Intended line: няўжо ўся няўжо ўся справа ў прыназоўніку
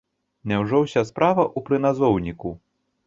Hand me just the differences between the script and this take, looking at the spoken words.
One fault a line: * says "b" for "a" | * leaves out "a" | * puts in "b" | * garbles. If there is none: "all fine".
* leaves out "няўжо ўся"